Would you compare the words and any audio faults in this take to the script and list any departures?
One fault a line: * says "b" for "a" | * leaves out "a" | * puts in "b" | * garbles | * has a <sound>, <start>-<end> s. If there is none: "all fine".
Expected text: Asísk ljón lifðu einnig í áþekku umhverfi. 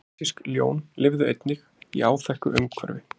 all fine